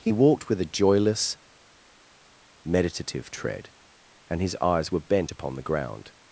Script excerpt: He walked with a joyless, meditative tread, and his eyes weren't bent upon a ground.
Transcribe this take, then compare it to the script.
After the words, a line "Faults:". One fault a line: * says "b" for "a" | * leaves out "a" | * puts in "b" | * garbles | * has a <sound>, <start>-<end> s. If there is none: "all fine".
He walked with a joyless, meditative tread, and his eyes were bent upon the ground.
Faults:
* says "were" for "weren't"
* says "the" for "a"